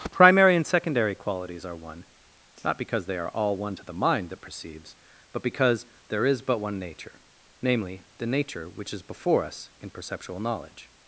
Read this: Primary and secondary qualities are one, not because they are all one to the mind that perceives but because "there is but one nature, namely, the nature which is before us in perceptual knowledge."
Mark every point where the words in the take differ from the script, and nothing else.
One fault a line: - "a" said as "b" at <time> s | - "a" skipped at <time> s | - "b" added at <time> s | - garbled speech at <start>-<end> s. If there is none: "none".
none